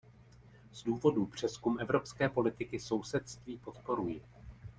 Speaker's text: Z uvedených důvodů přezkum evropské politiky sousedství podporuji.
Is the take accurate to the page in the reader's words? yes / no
no